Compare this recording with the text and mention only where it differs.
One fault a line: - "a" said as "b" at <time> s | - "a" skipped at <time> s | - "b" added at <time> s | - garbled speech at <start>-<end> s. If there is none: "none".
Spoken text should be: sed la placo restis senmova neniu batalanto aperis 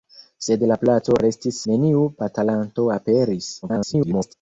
- "senmova" skipped at 1.6 s
- garbled speech at 3.6-4.3 s